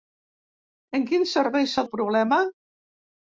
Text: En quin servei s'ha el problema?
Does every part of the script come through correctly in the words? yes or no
yes